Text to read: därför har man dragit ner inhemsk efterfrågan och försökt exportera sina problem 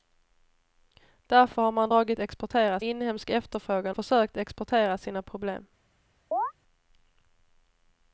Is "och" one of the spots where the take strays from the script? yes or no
yes